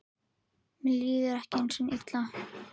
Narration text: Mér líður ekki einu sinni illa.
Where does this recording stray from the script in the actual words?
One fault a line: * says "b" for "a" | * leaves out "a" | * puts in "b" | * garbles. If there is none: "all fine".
all fine